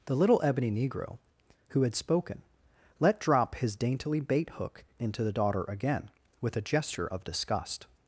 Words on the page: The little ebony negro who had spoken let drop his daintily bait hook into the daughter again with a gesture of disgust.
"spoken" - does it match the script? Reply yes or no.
yes